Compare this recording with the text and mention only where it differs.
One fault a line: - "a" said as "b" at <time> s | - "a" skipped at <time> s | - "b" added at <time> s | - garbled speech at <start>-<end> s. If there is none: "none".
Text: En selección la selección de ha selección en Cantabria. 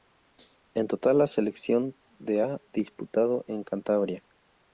- "selección" said as "total" at 0.9 s
- "selección" said as "disputado" at 2.7 s